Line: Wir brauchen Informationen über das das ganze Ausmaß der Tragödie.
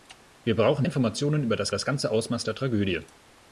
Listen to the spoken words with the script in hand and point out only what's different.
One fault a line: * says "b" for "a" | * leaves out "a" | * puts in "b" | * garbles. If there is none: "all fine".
all fine